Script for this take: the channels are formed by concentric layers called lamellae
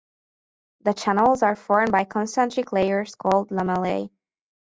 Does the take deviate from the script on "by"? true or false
false